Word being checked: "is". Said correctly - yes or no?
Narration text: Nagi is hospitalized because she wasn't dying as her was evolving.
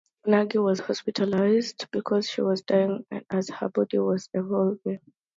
no